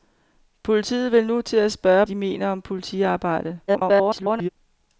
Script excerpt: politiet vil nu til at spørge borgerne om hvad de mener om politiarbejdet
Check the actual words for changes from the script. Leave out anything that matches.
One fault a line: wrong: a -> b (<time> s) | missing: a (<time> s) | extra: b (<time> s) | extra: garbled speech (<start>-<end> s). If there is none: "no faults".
missing: borgerne om hvad (2.0 s)
extra: garbled speech (3.7-4.5 s)